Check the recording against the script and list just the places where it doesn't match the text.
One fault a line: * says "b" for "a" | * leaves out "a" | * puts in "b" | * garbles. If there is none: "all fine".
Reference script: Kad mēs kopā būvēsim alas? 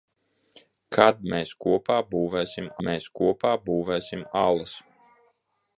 * puts in "mēs kopā būvēsim"